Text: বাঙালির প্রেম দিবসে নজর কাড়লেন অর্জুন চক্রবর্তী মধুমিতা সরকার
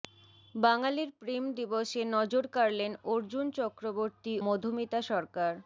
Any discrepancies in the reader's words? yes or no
no